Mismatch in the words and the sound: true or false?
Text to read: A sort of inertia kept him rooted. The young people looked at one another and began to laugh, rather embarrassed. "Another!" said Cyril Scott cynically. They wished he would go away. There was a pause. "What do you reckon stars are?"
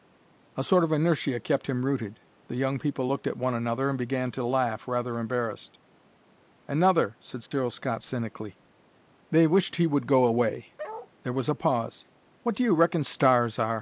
true